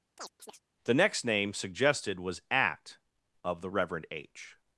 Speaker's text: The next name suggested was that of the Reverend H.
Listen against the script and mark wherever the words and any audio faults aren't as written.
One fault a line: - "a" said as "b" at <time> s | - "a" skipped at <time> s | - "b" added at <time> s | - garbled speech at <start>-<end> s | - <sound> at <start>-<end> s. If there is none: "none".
- chirp at 0.2-0.6 s
- "that" said as "at" at 2.5 s